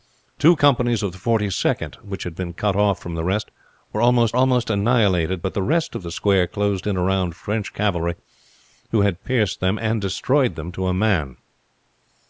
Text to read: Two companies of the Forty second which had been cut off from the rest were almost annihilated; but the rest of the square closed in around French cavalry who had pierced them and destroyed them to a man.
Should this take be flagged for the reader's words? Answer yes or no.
yes